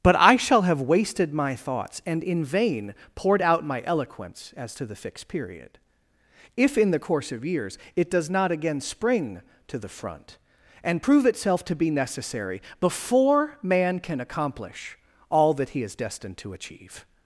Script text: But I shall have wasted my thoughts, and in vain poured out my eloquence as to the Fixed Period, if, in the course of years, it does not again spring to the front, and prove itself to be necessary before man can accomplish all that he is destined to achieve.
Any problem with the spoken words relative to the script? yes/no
no